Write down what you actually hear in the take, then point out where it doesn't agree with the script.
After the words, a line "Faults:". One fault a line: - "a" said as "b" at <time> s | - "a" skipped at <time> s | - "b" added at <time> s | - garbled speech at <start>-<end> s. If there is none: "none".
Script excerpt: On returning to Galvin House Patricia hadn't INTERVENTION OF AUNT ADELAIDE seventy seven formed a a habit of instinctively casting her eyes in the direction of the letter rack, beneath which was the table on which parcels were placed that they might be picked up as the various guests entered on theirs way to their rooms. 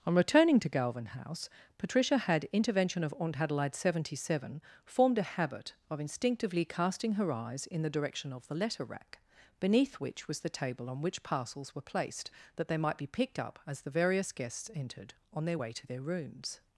On returning to Galvin House Patricia had INTERVENTION OF AUNT ADELAIDE seventy seven formed a habit of instinctively casting her eyes in the direction of the letter rack, beneath which was the table on which parcels were placed that they might be picked up as the various guests entered on their way to their rooms.
Faults:
- "hadn't" said as "had" at 2.2 s
- "a" skipped at 5.4 s
- "theirs" said as "their" at 15.4 s